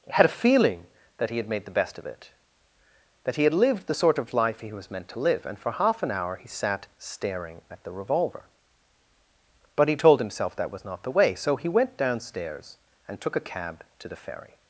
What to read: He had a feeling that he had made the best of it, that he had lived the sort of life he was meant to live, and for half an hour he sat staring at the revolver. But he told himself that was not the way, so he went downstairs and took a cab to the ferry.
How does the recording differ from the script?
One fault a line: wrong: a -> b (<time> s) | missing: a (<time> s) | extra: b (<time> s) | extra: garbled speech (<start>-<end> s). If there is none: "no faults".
missing: He (0.1 s)